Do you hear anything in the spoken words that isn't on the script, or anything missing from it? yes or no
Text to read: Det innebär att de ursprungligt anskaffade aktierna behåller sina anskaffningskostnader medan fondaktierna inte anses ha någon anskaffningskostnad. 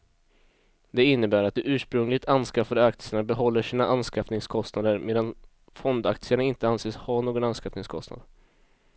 no